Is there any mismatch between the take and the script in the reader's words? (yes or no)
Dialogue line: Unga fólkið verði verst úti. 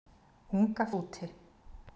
yes